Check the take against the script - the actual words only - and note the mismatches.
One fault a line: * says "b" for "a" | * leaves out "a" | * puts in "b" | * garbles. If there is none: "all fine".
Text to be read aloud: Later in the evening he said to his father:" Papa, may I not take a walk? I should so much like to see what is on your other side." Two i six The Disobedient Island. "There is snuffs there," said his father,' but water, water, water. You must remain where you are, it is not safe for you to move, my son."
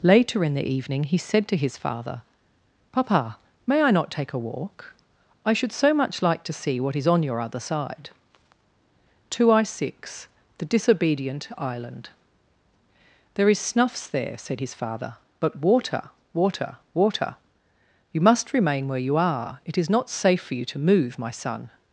all fine